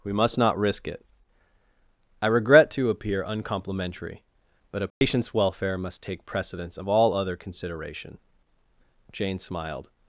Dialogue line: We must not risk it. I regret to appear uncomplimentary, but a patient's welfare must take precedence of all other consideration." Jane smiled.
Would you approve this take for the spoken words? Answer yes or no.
yes